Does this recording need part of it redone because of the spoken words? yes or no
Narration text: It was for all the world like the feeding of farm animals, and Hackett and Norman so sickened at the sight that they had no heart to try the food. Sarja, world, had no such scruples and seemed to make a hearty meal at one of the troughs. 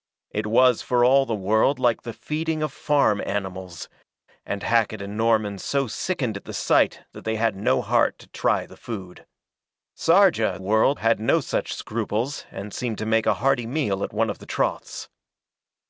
no